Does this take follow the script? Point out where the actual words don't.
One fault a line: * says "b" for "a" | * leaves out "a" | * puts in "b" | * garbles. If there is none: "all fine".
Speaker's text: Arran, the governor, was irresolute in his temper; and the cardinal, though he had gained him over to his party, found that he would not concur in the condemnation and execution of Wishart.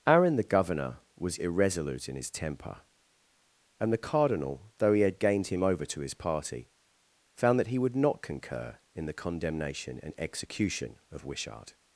all fine